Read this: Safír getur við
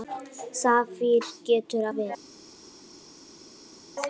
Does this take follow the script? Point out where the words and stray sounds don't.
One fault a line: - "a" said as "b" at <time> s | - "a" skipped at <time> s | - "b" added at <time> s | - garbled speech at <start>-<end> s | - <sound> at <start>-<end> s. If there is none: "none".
none